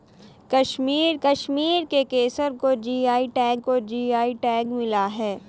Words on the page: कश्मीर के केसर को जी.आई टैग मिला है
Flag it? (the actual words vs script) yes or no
yes